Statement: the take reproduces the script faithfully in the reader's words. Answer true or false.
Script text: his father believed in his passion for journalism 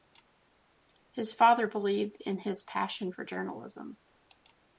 true